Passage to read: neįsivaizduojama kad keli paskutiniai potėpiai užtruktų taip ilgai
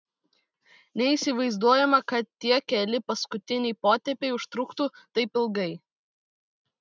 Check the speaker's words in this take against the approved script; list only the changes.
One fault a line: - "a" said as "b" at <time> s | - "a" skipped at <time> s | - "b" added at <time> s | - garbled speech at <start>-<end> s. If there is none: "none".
- "tie" added at 2.5 s